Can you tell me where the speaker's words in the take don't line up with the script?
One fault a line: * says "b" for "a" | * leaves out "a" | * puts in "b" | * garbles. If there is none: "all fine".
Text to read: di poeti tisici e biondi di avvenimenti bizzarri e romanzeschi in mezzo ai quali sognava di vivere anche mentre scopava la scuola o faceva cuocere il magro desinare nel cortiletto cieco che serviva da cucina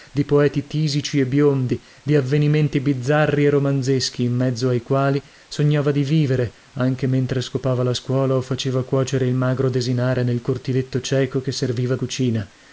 * leaves out "da"